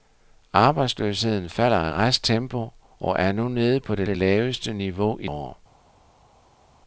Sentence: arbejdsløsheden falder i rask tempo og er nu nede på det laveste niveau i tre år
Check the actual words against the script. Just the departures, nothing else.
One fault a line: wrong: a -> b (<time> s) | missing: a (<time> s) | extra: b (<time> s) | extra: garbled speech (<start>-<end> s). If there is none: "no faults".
extra: det (4.0 s)
missing: tre (5.3 s)